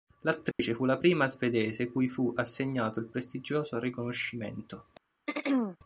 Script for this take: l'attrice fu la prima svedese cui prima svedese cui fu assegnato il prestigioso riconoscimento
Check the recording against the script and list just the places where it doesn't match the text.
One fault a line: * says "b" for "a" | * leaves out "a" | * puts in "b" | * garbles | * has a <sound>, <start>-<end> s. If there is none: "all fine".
* has a dropout, 0.5-0.6 s
* leaves out "prima svedese cui"
* has a throat clearing, 5.3-5.8 s